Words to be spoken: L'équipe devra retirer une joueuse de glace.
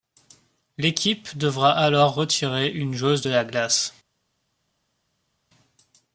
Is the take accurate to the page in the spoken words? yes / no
no